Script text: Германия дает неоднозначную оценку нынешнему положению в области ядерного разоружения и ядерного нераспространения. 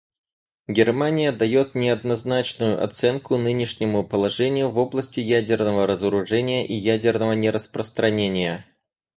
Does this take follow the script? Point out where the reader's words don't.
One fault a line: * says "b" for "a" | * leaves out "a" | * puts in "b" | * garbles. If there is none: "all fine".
all fine